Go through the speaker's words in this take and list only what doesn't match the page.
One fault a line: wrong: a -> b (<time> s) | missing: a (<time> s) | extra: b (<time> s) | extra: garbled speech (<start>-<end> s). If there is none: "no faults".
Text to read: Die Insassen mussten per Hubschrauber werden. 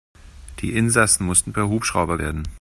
no faults